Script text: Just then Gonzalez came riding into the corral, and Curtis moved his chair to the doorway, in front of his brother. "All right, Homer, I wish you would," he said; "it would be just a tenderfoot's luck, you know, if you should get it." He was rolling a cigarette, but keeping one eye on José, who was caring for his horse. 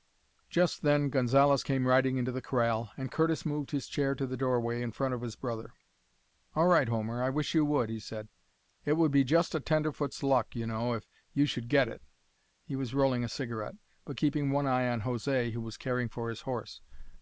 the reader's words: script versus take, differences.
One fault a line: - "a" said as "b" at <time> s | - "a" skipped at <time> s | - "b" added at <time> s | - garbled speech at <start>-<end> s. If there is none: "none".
none